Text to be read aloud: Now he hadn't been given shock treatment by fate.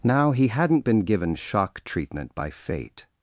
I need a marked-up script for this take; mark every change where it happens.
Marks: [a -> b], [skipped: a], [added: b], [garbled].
Now he hadn't been given shock treatment by fate.